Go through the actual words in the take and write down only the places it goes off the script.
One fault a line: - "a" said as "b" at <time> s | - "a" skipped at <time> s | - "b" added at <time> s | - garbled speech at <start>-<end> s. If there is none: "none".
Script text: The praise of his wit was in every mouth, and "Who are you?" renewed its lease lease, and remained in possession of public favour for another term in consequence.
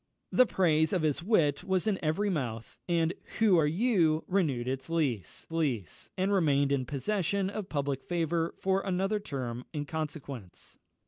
none